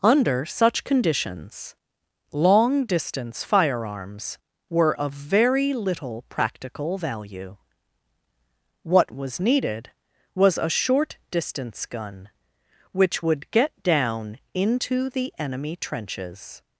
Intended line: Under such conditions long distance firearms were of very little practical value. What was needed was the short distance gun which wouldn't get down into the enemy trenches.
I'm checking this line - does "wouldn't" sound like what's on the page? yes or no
no